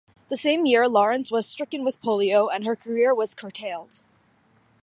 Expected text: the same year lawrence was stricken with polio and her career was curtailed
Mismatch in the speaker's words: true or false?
false